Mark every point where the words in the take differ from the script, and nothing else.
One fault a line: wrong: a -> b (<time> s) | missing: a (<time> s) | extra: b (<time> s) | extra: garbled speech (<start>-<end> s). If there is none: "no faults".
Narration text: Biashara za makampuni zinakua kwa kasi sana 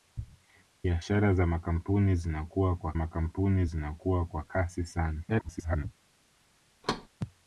extra: makampuni zinakua kwa (2.9 s)
extra: garbled speech (5.3-5.8 s)